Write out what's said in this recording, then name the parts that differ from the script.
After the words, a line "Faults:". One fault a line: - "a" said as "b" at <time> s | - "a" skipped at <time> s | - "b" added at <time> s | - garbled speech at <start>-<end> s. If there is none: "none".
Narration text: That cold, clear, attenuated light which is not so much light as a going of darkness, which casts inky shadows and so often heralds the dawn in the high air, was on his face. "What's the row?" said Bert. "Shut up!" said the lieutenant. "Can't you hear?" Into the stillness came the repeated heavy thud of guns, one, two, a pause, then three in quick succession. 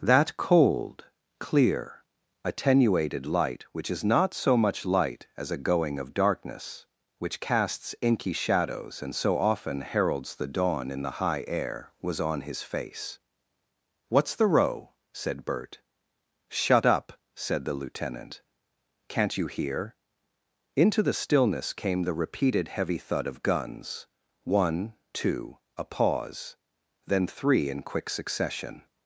That cold, clear, attenuated light which is not so much light as a going of darkness, which casts inky shadows and so often heralds the dawn in the high air, was on his face. "What's the row?" said Bert. "Shut up!" said the lieutenant. "Can't you hear?" Into the stillness came the repeated heavy thud of guns, one, two, a pause, then three in quick succession.
Faults:
none